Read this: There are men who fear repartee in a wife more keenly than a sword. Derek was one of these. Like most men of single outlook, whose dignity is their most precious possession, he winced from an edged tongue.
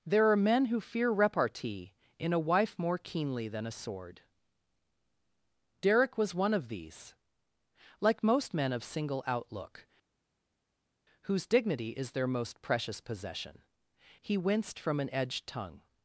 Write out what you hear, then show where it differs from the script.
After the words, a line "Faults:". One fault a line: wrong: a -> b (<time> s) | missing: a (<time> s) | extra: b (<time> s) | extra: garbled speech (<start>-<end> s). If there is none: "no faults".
There are men who fear repartee in a wife more keenly than a sword. Derek was one of these. Like most men of single outlook, whose dignity is their most precious possession, he winced from an edged tongue.
Faults:
no faults